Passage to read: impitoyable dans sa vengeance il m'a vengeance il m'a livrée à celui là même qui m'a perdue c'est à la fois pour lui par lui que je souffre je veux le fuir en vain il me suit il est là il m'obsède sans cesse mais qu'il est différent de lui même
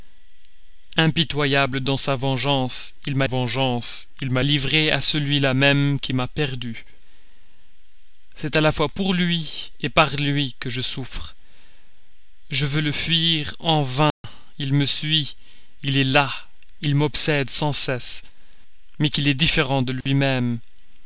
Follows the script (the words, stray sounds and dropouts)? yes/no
no